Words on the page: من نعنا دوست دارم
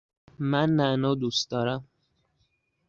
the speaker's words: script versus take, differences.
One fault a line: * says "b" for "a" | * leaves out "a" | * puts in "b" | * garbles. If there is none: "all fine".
all fine